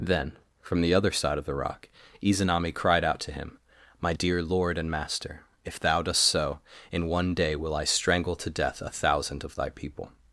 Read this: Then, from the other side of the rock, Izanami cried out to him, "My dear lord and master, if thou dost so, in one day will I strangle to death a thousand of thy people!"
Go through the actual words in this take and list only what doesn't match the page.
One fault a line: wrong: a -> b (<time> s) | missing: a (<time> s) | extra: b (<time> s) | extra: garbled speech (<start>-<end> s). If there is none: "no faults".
no faults